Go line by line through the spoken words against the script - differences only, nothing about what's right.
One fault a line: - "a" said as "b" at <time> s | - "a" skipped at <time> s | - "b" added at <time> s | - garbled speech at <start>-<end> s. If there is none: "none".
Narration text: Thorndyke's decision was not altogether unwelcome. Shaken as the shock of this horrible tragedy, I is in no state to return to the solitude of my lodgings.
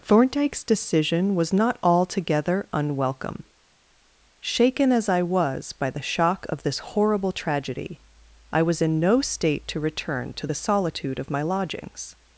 - "I was by" added at 5.1 s
- "is" said as "was" at 8.6 s